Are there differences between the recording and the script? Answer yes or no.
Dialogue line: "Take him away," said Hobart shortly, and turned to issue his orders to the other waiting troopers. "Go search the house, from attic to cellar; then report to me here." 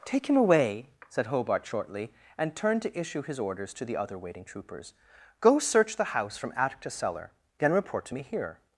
no